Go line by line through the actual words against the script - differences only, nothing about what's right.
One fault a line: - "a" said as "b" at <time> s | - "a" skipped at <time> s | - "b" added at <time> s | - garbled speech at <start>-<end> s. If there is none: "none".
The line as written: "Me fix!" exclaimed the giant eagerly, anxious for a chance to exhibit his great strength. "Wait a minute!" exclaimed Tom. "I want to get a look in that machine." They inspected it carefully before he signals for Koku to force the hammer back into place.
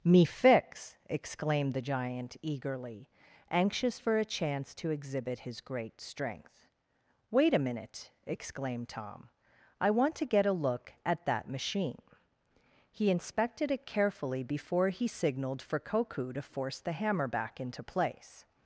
- "in" said as "at" at 11.1 s
- "They" said as "He" at 12.9 s
- "signals" said as "signaled" at 15.1 s